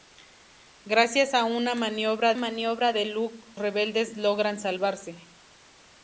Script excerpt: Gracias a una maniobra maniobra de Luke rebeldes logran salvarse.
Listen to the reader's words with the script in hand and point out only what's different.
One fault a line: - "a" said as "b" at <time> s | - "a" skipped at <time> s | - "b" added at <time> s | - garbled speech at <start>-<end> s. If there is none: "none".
none